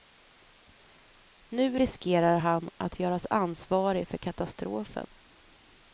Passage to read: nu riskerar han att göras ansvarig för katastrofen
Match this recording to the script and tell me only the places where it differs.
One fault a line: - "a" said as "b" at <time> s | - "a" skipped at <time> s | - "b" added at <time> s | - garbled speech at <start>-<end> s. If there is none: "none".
none